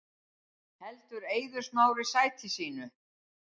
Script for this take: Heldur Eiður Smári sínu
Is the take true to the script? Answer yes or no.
no